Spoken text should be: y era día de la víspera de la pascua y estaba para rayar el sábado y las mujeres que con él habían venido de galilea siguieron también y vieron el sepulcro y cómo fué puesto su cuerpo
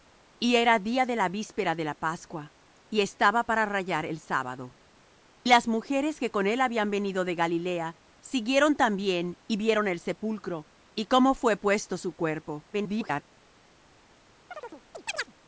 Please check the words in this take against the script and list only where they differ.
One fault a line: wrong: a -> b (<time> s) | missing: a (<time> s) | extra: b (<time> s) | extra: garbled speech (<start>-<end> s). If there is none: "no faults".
missing: y (4.8 s)
extra: garbled speech (12.7-13.2 s)